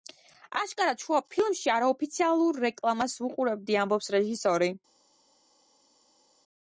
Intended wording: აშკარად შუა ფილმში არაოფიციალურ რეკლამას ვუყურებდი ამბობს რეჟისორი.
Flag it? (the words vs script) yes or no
no